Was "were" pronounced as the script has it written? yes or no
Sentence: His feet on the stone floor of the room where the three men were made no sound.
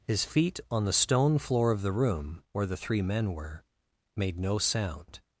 yes